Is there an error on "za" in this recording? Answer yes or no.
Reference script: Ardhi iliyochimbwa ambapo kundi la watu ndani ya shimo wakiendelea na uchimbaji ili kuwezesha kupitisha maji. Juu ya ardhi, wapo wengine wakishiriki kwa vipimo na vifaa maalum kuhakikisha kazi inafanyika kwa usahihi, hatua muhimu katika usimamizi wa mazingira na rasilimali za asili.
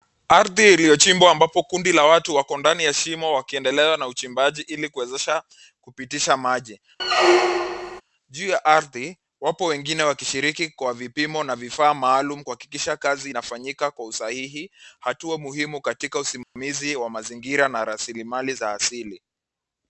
no